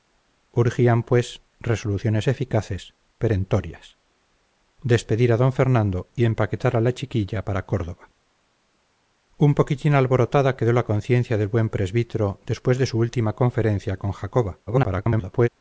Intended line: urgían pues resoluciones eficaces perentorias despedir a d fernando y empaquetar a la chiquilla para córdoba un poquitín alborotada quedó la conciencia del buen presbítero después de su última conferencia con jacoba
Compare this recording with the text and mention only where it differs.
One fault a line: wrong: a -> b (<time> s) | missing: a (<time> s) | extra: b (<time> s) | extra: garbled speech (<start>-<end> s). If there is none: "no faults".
extra: garbled speech (14.7-15.5 s)